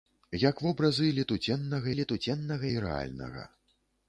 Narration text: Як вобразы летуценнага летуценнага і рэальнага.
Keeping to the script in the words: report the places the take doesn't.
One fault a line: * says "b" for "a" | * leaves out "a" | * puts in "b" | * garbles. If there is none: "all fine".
all fine